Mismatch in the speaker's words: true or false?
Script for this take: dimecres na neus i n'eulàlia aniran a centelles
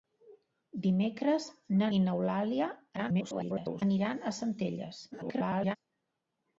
true